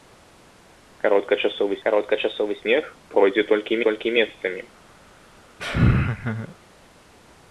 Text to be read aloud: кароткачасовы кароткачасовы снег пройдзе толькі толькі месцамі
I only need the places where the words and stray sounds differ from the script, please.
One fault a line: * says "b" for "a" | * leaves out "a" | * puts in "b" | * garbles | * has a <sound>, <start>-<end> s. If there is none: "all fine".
* has a laugh, 5.6-6.5 s